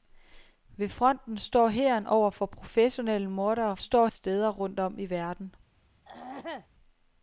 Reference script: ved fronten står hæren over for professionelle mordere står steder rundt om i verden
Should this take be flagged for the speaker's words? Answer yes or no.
no